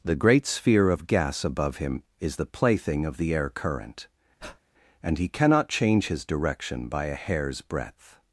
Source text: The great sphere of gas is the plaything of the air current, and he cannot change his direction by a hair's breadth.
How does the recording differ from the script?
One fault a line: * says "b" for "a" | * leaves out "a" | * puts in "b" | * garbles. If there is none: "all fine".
* puts in "above him"